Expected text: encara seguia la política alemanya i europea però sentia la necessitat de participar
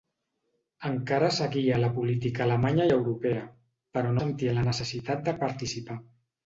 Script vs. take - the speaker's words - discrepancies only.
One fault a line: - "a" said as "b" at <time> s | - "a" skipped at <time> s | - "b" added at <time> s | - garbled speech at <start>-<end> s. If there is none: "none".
none